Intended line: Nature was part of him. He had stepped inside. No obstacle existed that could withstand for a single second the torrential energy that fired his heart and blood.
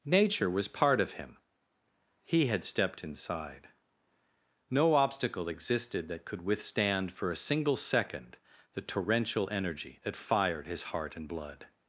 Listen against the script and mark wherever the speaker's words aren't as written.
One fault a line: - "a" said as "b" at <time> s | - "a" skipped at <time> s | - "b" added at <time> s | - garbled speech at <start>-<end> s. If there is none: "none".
none